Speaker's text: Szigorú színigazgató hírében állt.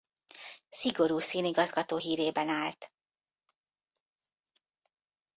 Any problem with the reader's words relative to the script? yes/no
no